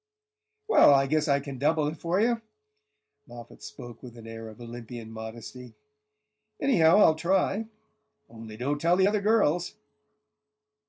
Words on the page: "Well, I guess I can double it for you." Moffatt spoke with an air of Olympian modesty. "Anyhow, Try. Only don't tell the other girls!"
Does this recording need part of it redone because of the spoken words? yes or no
yes